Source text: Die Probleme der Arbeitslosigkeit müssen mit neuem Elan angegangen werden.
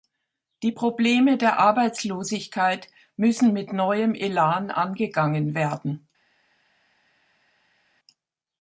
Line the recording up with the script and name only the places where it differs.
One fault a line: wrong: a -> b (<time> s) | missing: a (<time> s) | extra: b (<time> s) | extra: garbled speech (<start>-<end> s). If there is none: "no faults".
no faults